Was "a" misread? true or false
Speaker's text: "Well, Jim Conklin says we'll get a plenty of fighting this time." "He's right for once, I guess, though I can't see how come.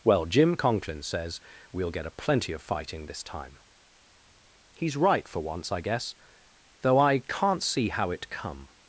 false